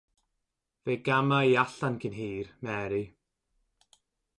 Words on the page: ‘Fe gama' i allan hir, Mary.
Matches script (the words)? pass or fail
fail